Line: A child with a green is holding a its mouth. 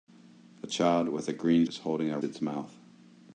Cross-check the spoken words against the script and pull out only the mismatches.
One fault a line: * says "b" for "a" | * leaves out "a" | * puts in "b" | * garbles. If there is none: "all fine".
all fine